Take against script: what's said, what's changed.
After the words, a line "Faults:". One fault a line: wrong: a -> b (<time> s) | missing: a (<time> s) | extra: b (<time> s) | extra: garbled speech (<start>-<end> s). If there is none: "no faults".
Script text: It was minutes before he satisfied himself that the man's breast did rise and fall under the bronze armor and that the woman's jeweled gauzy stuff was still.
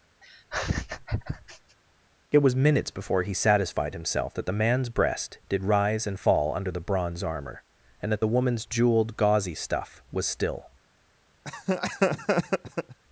It was minutes before he satisfied himself that the man's breast did rise and fall under the bronze armor and that the woman's jeweled gauzy stuff was still.
Faults:
no faults